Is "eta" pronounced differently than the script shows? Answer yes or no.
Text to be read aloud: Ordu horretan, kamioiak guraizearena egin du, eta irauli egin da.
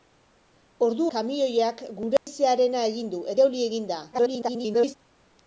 yes